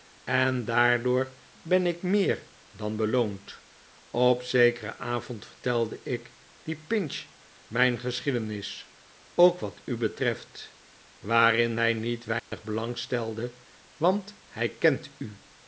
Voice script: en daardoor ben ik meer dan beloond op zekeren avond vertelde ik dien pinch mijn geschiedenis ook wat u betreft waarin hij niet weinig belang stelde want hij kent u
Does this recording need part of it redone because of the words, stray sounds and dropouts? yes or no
yes